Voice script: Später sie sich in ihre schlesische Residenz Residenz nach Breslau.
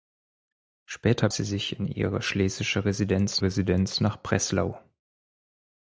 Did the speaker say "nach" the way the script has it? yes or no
yes